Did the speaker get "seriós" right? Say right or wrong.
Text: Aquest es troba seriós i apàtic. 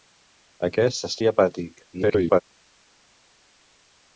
wrong